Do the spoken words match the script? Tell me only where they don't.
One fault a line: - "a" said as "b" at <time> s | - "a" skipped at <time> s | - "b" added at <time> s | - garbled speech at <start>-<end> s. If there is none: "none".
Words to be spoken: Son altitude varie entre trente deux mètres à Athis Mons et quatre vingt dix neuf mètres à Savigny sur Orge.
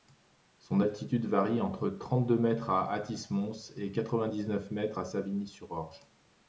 none